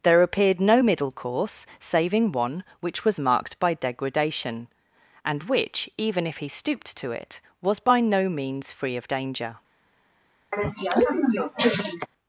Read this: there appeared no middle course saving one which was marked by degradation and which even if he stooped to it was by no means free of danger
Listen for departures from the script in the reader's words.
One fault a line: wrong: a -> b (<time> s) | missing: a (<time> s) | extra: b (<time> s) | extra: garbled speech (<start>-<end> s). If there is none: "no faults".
no faults